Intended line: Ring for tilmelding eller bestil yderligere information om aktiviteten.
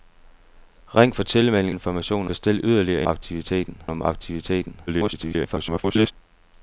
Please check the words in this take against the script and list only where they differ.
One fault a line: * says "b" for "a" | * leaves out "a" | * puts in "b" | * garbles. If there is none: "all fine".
* says "information" for "eller"
* says "aktiviteten" for "information"
* garbles